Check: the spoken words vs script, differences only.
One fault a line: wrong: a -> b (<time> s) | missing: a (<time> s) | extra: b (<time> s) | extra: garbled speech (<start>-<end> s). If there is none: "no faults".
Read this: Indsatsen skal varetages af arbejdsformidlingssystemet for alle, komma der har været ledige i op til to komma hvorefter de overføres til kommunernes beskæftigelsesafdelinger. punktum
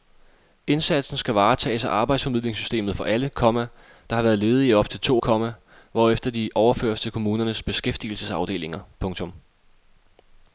no faults